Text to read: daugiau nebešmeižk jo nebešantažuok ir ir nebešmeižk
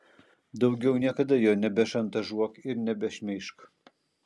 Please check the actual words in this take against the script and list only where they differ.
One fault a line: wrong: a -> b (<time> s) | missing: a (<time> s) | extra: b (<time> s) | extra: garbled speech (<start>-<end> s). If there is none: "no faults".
wrong: nebešmeižk -> niekada (1.0 s)
missing: ir (2.8 s)